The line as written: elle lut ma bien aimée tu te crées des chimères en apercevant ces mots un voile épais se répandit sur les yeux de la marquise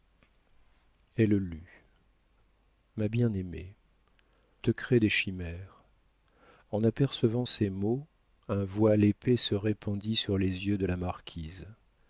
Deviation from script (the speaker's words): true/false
true